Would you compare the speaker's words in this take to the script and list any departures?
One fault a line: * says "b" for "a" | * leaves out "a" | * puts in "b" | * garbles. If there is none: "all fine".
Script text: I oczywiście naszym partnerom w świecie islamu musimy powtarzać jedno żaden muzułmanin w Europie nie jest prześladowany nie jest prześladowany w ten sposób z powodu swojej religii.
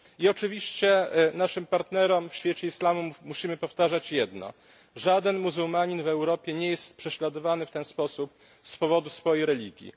* leaves out "nie jest prześladowany"